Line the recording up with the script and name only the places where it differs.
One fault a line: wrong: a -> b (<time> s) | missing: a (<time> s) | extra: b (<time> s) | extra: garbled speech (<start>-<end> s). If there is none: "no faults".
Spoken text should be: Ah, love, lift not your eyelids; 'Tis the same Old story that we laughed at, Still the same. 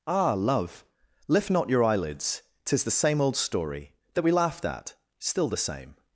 no faults